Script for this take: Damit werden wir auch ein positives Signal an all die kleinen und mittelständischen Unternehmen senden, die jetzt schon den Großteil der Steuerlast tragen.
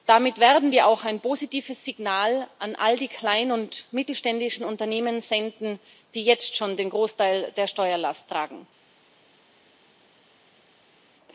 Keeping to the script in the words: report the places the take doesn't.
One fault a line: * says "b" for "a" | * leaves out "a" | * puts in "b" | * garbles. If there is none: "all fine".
all fine